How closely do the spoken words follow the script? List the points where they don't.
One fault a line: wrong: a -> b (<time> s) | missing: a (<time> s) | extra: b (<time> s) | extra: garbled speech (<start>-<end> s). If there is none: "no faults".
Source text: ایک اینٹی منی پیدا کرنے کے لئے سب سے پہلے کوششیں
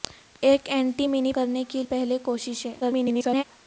missing: پیدا (1.3 s)
missing: لئے سب سے (1.8 s)
extra: garbled speech (2.8-3.4 s)